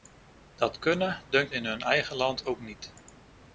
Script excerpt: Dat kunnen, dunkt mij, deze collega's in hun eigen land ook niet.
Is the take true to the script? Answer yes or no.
no